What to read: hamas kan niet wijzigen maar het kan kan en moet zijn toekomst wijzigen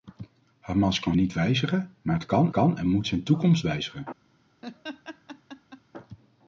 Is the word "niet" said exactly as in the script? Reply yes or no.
yes